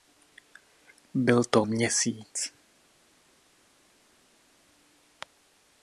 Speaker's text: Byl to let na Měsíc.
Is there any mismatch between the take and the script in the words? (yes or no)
yes